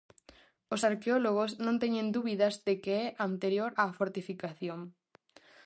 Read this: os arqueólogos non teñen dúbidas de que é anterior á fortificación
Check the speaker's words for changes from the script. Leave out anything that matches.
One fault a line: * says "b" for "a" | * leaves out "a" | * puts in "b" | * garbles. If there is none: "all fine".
all fine